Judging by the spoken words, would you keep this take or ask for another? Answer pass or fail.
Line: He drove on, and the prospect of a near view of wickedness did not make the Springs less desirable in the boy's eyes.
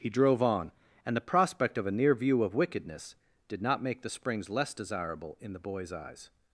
pass